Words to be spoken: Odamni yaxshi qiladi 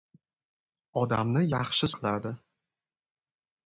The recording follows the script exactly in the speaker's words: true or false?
true